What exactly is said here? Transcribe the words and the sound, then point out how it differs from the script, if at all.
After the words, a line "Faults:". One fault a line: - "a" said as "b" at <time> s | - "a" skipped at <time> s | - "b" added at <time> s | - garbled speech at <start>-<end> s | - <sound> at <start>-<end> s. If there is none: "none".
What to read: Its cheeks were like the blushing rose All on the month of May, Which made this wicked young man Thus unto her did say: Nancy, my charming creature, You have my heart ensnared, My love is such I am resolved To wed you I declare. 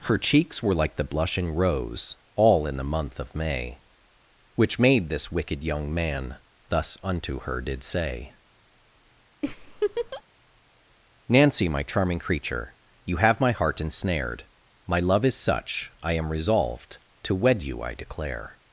Her cheeks were like the blushing rose All in the month of May, Which made this wicked young man Thus unto her did say: Nancy, my charming creature, You have my heart ensnared, My love is such I am resolved To wed you I declare.
Faults:
- "Its" said as "Her" at 0.0 s
- "on" said as "in" at 2.6 s
- laugh at 9.4-10.2 s